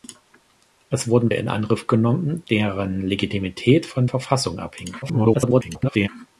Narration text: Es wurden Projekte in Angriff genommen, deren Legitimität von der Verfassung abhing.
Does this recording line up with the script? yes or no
no